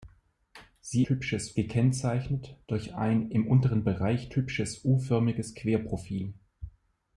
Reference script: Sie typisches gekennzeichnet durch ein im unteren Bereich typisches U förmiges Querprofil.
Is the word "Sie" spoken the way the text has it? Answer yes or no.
yes